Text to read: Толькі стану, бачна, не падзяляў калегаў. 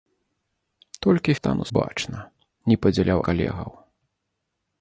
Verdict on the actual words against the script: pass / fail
pass